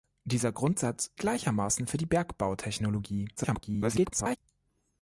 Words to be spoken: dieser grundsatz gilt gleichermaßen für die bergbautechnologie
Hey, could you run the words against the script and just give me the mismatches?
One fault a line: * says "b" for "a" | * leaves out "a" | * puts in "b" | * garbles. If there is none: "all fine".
* leaves out "gilt"
* garbles